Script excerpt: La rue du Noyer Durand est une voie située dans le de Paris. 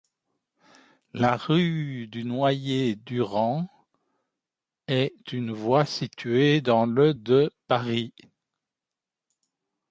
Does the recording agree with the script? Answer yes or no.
yes